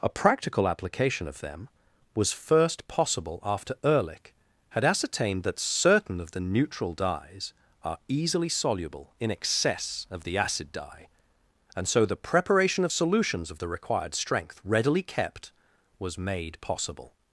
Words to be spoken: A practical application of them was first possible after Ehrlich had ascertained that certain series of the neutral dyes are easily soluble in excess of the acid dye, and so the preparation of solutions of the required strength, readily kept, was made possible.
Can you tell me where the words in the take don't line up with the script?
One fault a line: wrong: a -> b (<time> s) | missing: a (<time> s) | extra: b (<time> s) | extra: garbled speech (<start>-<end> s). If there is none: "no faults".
missing: series (6.2 s)